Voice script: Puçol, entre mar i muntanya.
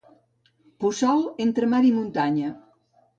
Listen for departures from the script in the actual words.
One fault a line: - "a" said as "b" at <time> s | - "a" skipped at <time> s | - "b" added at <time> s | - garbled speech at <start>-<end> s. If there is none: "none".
none